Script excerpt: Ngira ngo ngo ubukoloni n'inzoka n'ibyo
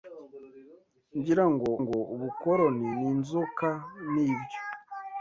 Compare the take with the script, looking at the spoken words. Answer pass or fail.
pass